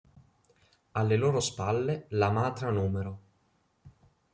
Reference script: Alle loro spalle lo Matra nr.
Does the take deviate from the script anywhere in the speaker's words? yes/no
yes